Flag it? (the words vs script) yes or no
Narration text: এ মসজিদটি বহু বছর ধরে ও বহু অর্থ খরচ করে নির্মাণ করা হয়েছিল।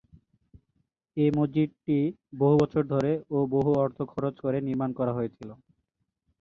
no